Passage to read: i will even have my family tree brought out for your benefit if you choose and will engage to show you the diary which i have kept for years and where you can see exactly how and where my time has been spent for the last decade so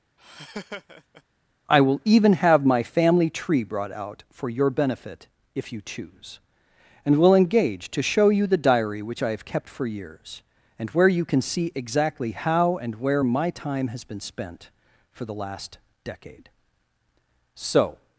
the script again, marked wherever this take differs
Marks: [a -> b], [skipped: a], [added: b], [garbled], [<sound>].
[laugh] i will even have my family tree brought out for your benefit if you choose and will engage to show you the diary which i have kept for years and where you can see exactly how and where my time has been spent for the last decade so